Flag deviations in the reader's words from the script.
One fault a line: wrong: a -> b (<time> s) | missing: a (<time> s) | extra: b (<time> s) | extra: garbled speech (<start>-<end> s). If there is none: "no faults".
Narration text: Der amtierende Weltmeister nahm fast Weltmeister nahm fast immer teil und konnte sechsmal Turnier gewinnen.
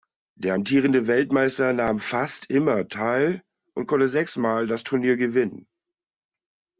missing: Weltmeister nahm fast (2.5 s)
extra: das (4.7 s)